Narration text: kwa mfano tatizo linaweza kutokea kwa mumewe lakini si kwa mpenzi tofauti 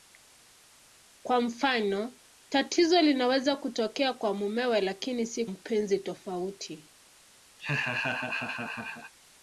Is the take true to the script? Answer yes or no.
no